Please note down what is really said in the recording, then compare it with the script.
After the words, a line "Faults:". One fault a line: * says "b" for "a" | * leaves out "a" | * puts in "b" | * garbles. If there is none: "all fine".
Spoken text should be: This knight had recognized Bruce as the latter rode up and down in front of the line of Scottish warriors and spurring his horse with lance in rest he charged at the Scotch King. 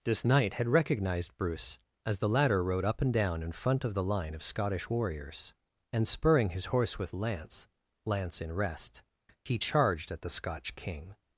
This knight had recognized Bruce as the latter rode up and down in front of the line of Scottish warriors and spurring his horse with lance lance in rest he charged at the Scotch King.
Faults:
* puts in "lance"